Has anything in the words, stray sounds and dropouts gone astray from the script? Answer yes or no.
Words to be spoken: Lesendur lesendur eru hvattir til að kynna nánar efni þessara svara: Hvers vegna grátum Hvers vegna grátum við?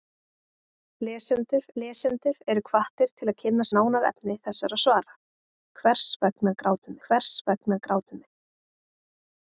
no